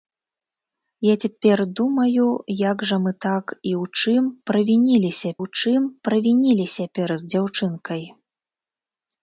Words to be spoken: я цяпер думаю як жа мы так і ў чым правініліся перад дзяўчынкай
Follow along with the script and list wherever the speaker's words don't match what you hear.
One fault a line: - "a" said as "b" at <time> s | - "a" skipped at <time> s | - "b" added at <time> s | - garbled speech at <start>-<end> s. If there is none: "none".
- "ў чым правініліся" added at 5.4 s